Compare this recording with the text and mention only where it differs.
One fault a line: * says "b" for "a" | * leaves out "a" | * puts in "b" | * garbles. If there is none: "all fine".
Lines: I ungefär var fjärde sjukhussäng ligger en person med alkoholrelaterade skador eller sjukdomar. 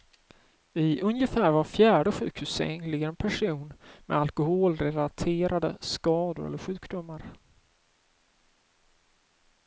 all fine